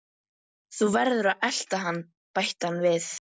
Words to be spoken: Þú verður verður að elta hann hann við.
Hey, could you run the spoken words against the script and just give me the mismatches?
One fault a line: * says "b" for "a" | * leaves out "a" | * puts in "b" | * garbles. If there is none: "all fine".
* leaves out "verður"
* puts in "bætti"